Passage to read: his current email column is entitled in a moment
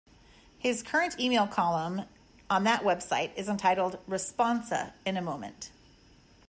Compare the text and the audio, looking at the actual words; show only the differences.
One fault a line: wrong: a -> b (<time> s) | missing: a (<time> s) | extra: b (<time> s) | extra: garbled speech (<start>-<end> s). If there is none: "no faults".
extra: on that website (2.5 s)
extra: responsa (4.1 s)